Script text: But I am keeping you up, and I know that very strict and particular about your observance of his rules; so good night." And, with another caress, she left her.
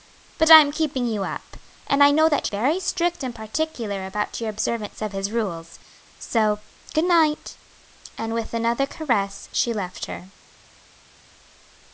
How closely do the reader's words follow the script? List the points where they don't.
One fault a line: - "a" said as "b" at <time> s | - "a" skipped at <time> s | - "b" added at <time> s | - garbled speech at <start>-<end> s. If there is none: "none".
none